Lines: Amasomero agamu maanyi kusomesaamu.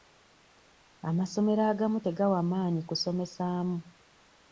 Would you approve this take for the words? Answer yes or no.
no